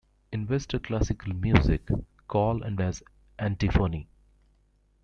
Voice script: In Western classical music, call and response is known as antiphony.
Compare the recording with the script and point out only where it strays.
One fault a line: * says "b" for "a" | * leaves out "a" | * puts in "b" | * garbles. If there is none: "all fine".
* leaves out "response is known"